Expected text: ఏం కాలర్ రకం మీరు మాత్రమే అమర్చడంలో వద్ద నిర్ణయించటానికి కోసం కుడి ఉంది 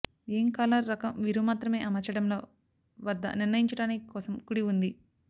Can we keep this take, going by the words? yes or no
yes